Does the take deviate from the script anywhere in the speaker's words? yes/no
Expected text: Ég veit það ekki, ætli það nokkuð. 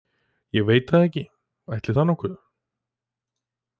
no